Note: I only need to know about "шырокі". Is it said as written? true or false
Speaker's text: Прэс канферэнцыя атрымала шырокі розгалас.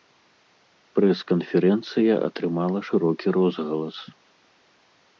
true